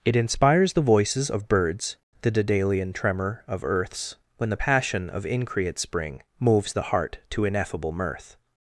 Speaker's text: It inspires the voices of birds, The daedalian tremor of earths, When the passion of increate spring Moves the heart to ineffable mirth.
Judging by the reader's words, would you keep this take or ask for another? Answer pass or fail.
pass